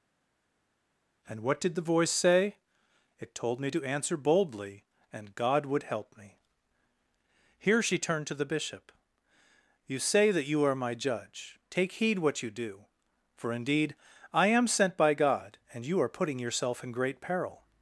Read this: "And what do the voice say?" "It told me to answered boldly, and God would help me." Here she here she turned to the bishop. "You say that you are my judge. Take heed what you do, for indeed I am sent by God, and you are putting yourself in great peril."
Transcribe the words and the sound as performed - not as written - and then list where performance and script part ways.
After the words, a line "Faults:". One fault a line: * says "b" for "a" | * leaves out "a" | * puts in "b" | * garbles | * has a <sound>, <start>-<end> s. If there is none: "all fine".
"And what did the voice say?" "It told me to answer boldly, and God would help me." Here she turned to the bishop. "You say that you are my judge. Take heed what you do, for indeed I am sent by God, and you are putting yourself in great peril."
Faults:
* says "did" for "do"
* says "answer" for "answered"
* leaves out "here she"